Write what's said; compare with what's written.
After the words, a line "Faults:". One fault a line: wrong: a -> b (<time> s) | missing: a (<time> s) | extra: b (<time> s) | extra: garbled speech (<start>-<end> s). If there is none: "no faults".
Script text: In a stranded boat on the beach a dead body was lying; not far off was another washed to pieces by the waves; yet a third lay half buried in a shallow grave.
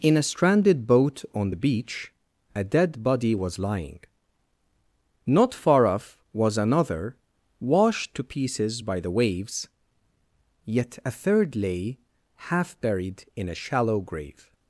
In a stranded boat on the beach a dead body was lying; not far off was another washed to pieces by the waves; yet a third lay half buried in a shallow grave.
Faults:
no faults